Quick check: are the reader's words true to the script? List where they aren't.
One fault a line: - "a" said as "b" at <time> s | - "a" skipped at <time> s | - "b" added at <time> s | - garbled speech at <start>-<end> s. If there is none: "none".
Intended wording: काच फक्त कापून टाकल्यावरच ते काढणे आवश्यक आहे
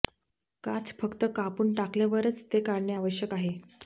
none